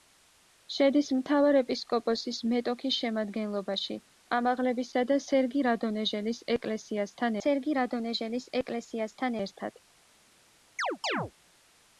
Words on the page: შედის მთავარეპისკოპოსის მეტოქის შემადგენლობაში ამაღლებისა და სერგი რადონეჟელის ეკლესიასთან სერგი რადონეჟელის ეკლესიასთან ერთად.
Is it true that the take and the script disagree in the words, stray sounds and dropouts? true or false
true